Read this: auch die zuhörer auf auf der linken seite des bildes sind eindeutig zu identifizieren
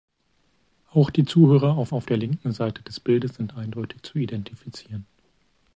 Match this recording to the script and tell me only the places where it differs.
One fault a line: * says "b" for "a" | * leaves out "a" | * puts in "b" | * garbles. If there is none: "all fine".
all fine